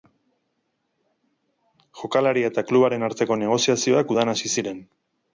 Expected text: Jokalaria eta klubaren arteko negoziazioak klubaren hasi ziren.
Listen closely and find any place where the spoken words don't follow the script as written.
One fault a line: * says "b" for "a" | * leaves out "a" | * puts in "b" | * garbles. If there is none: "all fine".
* says "udan" for "klubaren"